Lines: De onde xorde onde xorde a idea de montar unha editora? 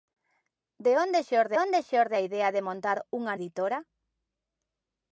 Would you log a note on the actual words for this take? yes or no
no